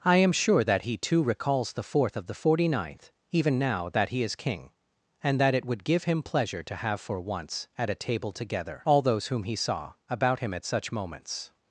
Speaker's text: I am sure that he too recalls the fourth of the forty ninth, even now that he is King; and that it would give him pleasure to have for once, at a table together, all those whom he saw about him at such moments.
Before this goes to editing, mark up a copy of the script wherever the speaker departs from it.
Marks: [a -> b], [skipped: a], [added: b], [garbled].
I am sure that he too recalls the fourth of the forty ninth, even now that he is King; and that it would give him pleasure to have for once, at a table together, all those whom he saw about him at such moments.